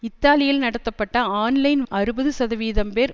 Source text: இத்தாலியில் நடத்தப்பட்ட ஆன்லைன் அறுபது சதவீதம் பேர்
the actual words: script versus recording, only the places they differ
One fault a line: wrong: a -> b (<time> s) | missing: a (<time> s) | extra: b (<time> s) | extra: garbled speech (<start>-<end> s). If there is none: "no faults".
no faults